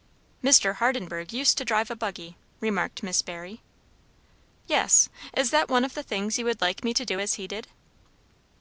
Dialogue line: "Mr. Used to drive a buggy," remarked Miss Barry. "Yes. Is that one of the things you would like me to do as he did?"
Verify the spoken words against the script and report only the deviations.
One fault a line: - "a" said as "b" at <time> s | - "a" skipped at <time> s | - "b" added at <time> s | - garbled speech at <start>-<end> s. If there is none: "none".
- "Hardenburgh" added at 0.8 s